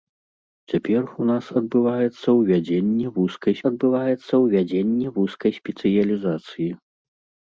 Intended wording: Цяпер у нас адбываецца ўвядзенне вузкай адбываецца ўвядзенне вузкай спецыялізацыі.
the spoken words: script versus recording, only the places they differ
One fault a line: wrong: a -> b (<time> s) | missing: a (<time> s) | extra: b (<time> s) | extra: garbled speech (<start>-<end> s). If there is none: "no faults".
no faults